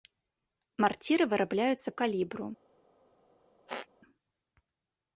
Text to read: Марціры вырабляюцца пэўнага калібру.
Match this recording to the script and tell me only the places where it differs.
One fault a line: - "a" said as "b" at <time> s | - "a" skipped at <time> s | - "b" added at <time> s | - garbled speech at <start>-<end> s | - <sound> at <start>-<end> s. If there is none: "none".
- "пэўнага" skipped at 1.9 s
- squeak at 3.7-3.9 s